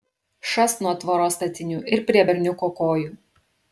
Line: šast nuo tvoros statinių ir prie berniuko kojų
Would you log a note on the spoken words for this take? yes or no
no